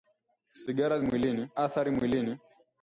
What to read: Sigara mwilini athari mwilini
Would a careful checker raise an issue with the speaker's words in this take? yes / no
no